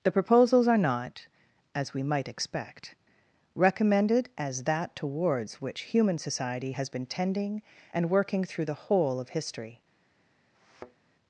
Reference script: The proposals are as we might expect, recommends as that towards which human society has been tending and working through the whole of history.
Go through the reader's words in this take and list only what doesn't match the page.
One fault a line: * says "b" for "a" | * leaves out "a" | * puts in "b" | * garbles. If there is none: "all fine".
* puts in "not"
* says "recommended" for "recommends"